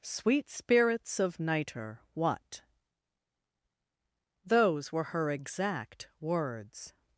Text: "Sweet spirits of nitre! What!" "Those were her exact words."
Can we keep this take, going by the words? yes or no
yes